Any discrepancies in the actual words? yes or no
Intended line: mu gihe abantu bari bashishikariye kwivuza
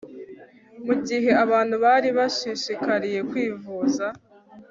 no